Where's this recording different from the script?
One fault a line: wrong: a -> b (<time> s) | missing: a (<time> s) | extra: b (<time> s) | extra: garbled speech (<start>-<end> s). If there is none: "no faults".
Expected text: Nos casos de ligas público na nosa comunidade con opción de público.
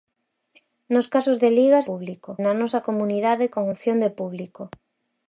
no faults